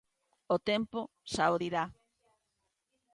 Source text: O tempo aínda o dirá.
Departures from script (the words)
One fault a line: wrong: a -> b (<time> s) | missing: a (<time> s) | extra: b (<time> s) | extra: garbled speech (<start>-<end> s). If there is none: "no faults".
wrong: aínda -> xa (1.3 s)